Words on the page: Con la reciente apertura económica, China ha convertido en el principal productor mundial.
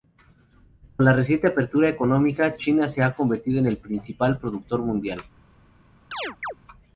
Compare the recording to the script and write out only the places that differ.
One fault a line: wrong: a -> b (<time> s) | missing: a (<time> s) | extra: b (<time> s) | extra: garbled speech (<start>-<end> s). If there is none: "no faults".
extra: se (2.9 s)